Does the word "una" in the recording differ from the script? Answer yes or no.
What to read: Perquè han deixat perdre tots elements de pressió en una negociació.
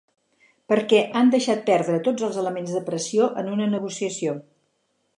no